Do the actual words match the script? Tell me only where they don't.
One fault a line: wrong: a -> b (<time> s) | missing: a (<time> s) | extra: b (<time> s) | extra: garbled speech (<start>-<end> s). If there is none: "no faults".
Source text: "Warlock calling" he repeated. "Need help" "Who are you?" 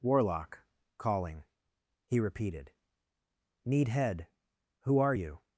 wrong: help -> head (3.9 s)